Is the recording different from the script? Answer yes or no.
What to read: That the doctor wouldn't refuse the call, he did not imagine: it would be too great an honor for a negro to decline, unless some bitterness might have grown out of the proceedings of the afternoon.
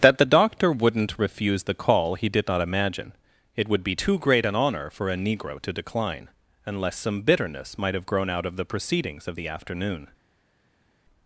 no